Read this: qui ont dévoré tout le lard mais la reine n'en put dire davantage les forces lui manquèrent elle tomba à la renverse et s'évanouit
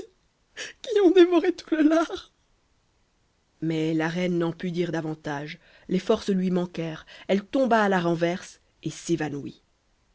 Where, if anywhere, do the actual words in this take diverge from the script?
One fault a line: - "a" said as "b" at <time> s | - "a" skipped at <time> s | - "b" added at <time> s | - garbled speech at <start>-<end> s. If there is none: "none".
none